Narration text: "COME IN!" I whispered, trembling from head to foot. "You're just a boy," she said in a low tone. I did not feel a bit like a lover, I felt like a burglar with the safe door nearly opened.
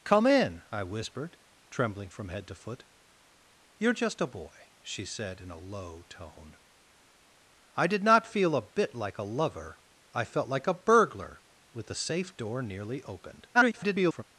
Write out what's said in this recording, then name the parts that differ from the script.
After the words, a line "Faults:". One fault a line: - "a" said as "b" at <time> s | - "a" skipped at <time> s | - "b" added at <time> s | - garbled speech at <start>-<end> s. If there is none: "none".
"COME IN!" I whispered, trembling from head to foot. "You're just a boy," she said in a low tone. I did not feel a bit like a lover, I felt like a burglar with the safe door nearly opened. [garbled]
Faults:
- garbled speech at 13.5-14.2 s